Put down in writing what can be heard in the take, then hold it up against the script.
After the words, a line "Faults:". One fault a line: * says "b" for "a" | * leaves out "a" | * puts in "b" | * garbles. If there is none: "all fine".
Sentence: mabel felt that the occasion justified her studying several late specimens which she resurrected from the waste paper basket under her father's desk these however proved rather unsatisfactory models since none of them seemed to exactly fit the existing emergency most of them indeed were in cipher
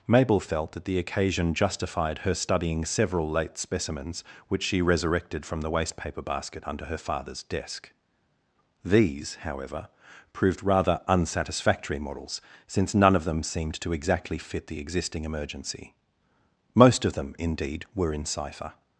mabel felt that the occasion justified her studying several late specimens which she resurrected from the waste paper basket under her father's desk these however proved rather unsatisfactory models since none of them seemed to exactly fit the existing emergency most of them indeed were in cipher
Faults:
all fine